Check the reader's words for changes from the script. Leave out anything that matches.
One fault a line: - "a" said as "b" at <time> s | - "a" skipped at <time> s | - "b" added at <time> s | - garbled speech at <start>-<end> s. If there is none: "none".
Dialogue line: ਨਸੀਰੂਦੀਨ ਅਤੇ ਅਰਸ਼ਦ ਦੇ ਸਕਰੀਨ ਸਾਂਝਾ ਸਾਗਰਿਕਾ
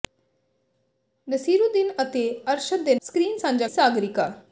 none